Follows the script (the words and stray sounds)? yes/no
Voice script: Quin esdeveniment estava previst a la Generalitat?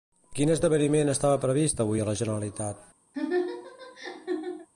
no